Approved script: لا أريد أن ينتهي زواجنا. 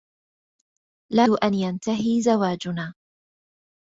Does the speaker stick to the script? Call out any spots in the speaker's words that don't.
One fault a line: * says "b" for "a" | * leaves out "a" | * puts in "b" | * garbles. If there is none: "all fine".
* leaves out "أريد"